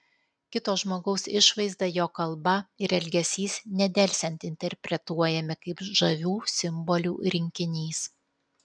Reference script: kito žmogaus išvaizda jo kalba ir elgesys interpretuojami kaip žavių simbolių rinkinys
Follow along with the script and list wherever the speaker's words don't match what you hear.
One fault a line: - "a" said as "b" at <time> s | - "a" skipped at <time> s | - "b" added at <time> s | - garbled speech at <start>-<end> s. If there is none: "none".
- "nedelsiant" added at 3.8 s